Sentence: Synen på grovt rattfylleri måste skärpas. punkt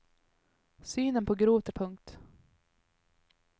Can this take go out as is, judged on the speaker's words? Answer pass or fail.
fail